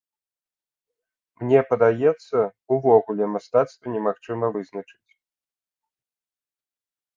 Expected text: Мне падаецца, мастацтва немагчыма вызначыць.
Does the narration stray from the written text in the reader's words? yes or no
yes